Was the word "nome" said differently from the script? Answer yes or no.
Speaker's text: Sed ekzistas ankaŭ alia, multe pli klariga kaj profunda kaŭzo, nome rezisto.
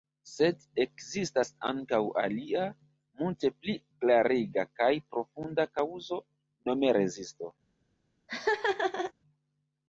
no